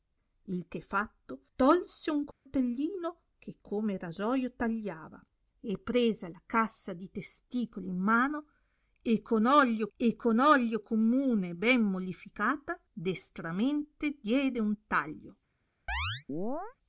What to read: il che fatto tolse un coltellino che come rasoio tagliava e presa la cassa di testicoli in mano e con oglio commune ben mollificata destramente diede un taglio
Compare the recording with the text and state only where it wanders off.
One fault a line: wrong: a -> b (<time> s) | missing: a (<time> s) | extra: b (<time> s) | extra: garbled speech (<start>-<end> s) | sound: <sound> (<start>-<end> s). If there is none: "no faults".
sound: dropout (2.3-2.5 s)
extra: e con oglio (10.0 s)
sound: chirp (15.9-16.8 s)